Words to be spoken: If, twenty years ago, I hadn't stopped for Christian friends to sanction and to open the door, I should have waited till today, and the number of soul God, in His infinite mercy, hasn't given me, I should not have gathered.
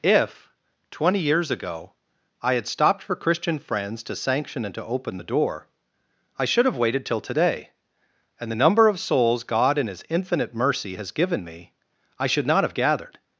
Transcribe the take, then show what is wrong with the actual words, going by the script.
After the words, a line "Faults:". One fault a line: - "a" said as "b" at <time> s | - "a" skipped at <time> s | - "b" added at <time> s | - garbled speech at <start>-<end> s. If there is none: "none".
If, twenty years ago, I had stopped for Christian friends to sanction and to open the door, I should have waited till today, and the number of souls God, in His infinite mercy, has given me, I should not have gathered.
Faults:
- "hadn't" said as "had" at 2.5 s
- "soul" said as "souls" at 9.0 s
- "hasn't" said as "has" at 11.0 s